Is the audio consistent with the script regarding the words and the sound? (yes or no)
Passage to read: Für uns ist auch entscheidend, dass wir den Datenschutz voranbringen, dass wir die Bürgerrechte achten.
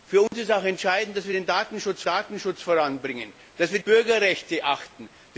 no